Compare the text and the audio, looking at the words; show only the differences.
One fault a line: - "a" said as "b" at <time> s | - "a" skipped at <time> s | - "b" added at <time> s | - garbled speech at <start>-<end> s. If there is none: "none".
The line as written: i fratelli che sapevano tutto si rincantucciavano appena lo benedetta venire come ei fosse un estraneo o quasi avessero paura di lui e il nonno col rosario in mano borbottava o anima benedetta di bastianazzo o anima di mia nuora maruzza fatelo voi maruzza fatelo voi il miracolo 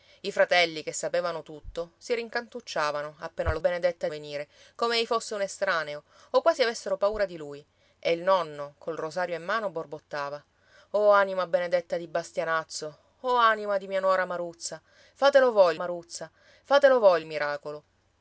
none